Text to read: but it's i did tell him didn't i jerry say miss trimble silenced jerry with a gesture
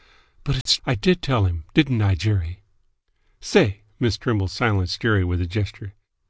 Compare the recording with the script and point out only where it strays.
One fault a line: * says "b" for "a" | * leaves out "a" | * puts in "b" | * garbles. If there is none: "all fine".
all fine